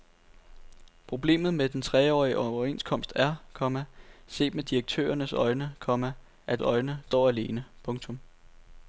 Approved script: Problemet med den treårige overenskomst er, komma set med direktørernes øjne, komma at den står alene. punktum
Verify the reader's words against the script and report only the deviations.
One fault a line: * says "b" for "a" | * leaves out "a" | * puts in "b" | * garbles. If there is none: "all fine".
* says "øjne" for "den"